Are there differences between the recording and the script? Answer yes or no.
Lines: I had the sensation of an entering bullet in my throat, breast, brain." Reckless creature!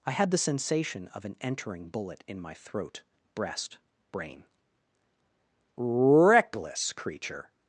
no